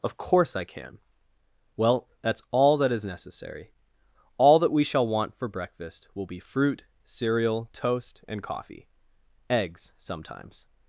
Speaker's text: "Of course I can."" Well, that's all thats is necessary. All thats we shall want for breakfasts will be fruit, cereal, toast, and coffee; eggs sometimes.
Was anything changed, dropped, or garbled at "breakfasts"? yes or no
yes